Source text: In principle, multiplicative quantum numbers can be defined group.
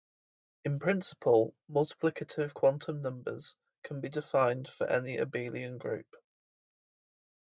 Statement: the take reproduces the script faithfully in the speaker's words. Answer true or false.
false